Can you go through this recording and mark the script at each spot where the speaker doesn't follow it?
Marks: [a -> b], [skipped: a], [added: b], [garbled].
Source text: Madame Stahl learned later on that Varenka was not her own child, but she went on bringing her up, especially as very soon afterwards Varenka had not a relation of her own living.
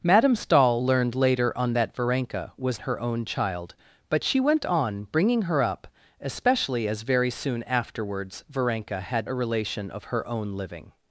Madame Stahl learned later on that Varenka was [skipped: not] her own child, but she went on bringing her up, especially as very soon afterwards Varenka had [skipped: not] a relation of her own living.